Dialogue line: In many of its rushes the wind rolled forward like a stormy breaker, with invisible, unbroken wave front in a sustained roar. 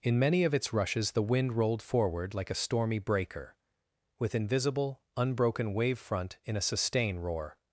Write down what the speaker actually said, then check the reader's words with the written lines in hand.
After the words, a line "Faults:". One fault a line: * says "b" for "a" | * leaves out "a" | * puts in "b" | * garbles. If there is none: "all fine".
In many of its rushes the wind rolled forward like a stormy breaker, with invisible, unbroken wave front in a sustain roar.
Faults:
* says "sustain" for "sustained"